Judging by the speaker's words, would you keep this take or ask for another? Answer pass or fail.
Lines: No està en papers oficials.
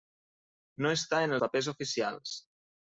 pass